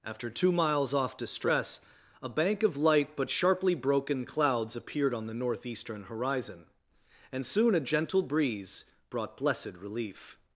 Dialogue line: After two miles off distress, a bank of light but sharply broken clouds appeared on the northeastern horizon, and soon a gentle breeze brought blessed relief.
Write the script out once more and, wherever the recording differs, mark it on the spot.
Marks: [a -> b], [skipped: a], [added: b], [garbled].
After two miles off distress, a bank of light but sharply broken clouds appeared on the northeastern horizon, and soon a gentle breeze brought blessed relief.